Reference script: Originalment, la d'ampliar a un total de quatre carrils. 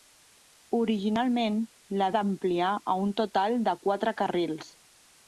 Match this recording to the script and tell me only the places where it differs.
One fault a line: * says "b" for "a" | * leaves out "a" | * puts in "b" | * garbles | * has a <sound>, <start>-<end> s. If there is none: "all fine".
all fine